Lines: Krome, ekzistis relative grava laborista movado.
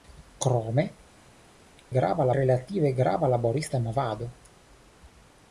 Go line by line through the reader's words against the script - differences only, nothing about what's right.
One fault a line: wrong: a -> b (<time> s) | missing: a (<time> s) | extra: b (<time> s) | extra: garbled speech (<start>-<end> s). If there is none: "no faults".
wrong: ekzistis -> grava (2.0 s)